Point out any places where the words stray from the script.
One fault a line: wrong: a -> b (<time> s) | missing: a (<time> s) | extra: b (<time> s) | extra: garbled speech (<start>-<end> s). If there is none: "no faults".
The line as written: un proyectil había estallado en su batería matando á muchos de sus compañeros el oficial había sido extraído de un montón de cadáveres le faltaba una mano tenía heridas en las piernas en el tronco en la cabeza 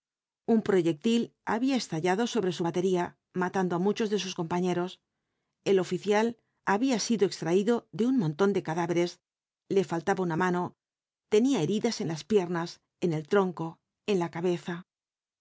wrong: en -> sobre (2.3 s)